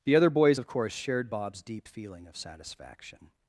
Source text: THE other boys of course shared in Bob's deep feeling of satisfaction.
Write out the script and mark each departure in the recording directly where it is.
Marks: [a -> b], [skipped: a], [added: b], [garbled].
THE other boys of course shared [skipped: in] Bob's deep feeling of satisfaction.